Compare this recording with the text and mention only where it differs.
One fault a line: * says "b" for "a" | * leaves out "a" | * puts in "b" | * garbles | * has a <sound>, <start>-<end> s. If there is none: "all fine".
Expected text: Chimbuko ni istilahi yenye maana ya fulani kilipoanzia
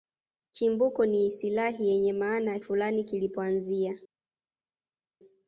all fine